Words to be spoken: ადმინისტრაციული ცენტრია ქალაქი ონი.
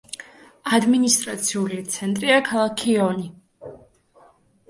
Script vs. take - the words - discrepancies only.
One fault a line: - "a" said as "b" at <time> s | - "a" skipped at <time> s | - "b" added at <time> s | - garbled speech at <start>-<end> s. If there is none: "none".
none